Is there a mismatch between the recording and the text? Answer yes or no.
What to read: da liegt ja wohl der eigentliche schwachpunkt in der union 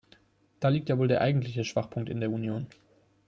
no